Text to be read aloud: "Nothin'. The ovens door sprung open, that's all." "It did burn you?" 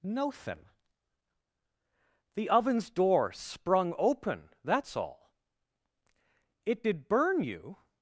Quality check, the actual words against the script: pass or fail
pass